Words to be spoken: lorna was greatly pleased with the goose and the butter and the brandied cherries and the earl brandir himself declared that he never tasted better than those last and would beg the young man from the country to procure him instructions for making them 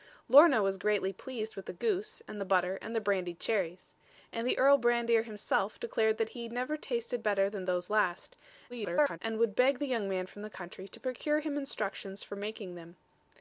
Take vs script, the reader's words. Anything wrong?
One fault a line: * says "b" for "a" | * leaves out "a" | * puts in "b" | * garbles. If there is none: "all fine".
* garbles